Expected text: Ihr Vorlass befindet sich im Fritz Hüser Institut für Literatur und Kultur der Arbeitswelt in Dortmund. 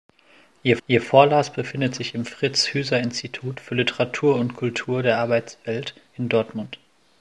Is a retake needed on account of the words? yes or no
yes